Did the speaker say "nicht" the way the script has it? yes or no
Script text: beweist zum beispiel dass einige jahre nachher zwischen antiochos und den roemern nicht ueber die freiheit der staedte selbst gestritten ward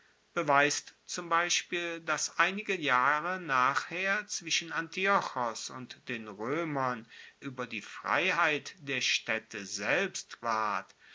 no